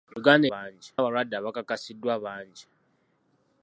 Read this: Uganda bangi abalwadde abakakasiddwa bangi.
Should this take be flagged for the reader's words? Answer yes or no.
no